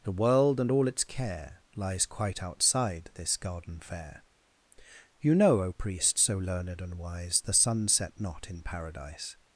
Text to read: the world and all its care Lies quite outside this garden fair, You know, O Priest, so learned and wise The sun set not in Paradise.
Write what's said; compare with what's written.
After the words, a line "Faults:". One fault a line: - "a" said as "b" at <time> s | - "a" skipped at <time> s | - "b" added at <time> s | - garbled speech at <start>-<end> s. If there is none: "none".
the world and all its care Lies quite outside this garden fair, You know, O Priest, so learned and wise The sun set not in Paradise.
Faults:
none